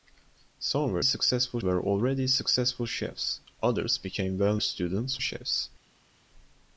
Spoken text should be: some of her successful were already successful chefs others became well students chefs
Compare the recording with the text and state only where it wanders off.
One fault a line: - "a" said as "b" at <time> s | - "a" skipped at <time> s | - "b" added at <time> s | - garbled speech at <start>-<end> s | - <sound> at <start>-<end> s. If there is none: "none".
none